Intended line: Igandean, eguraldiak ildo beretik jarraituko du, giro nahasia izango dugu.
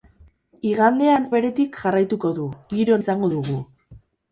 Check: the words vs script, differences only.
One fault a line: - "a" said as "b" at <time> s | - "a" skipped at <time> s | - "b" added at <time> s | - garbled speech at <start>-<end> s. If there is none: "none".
- "eguraldiak ildo" skipped at 1.3 s
- "nahasia" skipped at 3.0 s